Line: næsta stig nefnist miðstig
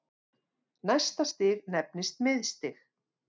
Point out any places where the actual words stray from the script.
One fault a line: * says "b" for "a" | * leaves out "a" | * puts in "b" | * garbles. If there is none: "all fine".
all fine